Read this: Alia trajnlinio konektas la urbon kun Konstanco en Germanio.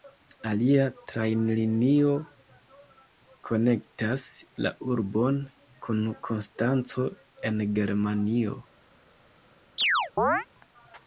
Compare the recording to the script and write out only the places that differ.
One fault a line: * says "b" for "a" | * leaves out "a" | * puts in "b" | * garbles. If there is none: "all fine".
all fine